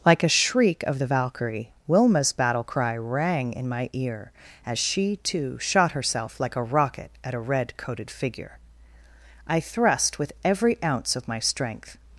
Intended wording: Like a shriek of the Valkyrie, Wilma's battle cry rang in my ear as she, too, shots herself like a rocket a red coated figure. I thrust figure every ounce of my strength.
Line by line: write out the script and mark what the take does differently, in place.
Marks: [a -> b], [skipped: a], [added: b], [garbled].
Like a shriek of the Valkyrie, Wilma's battle cry rang in my ear as she, too, [shots -> shot] herself like a rocket [added: at] a red coated figure. I thrust [figure -> with] every ounce of my strength.